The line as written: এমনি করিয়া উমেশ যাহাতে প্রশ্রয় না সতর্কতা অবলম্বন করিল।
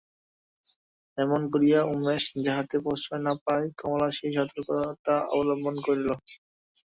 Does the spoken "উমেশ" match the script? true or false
true